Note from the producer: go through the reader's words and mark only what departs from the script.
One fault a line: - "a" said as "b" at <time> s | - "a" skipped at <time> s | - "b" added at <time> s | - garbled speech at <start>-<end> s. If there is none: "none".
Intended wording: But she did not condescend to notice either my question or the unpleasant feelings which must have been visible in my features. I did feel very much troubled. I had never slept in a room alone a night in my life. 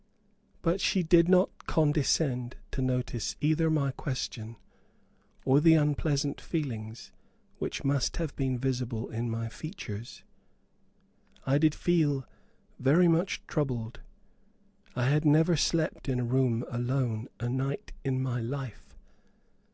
none